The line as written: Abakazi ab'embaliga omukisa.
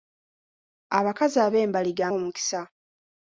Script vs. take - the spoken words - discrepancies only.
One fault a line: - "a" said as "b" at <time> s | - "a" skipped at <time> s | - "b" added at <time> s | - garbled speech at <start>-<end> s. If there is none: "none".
none